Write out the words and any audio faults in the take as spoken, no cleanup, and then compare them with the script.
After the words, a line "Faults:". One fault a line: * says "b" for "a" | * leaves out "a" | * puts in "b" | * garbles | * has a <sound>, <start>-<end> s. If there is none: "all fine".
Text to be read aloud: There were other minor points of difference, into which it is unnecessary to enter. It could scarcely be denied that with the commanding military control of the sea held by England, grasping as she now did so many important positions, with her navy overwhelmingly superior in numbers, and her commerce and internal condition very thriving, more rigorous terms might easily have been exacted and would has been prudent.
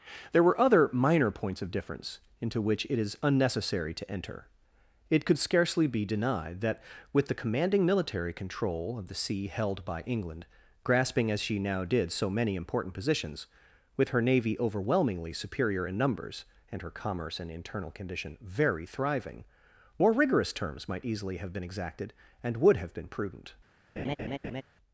There were other minor points of difference, into which it is unnecessary to enter. It could scarcely be denied that with the commanding military control of the sea held by England, grasping as she now did so many important positions, with her navy overwhelmingly superior in numbers, and her commerce and internal condition very thriving, more rigorous terms might easily have been exacted and would have been prudent.
Faults:
* says "have" for "has"
* has a laugh, 24.0-24.6 s